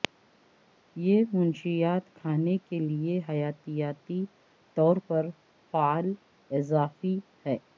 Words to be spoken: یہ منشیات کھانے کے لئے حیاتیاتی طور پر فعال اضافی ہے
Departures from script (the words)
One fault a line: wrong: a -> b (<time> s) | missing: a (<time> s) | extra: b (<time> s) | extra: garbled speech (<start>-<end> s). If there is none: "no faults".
no faults